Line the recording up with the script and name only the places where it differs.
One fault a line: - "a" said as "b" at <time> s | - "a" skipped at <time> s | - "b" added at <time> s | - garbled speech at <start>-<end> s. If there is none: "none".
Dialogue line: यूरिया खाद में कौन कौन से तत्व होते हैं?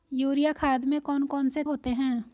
- "तत्व" skipped at 1.6 s